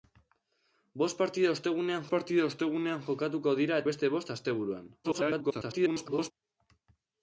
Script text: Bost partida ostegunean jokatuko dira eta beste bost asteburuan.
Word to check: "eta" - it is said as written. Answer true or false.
false